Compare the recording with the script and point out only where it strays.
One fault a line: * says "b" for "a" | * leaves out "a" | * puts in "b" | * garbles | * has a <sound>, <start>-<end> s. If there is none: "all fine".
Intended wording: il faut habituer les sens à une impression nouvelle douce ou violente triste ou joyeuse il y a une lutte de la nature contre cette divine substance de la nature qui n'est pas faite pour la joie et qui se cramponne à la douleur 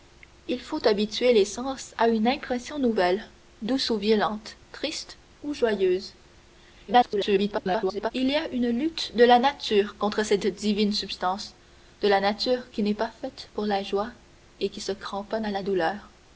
* garbles